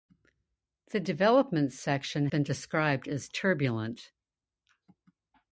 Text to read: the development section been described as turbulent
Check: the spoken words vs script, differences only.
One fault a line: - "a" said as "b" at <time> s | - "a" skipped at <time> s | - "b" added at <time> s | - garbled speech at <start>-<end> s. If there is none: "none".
none